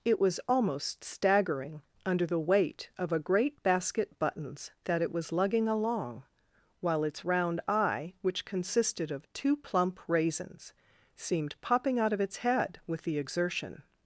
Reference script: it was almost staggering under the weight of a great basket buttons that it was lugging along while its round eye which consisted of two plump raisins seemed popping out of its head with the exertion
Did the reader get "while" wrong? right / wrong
right